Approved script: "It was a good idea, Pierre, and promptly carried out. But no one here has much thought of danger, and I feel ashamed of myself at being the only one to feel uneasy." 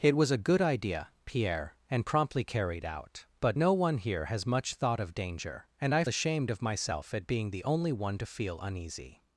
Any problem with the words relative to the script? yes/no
yes